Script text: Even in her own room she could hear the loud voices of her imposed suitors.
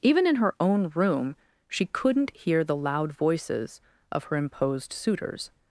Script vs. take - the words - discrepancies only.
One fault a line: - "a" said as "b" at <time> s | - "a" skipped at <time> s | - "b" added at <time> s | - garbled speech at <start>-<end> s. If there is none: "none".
- "could" said as "couldn't" at 1.9 s